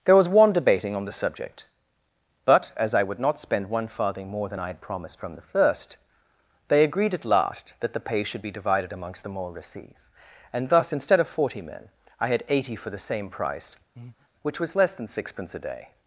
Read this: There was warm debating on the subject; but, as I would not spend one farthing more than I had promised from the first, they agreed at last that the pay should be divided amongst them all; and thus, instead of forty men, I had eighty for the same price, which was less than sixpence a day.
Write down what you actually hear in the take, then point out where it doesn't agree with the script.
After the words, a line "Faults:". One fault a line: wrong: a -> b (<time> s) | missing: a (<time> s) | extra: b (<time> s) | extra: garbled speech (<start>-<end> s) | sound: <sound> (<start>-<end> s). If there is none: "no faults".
There was one debating on the subject; but, as I would not spend one farthing more than I had promised from the first, they agreed at last that the pay should be divided amongst them all; receive and thus, instead of forty men, I had eighty for the same price, which was less than sixpence a day.
Faults:
wrong: warm -> one (0.3 s)
extra: receive (9.5 s)
sound: breath (14.0-14.3 s)